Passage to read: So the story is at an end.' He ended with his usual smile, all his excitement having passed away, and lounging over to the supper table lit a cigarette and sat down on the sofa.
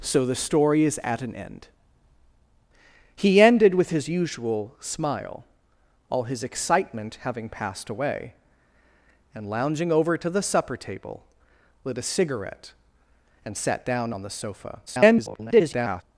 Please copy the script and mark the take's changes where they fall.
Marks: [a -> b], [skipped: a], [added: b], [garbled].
So the story is at an end.' He ended with his usual smile, all his excitement having passed away, and lounging over to the supper table lit a cigarette and sat down on the sofa. [garbled]